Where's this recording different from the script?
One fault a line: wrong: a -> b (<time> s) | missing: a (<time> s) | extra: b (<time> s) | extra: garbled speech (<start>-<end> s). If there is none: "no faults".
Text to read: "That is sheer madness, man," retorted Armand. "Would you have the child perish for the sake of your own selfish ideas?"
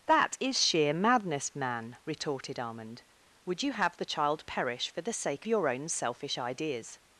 missing: of (5.5 s)